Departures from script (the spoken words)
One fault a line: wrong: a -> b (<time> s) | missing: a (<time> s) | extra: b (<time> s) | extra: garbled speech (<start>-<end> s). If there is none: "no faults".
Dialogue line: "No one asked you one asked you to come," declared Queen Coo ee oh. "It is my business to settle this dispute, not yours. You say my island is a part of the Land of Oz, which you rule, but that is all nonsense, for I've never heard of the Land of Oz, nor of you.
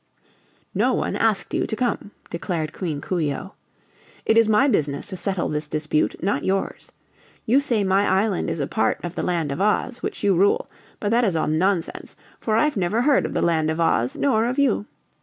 missing: one asked you (1.7 s)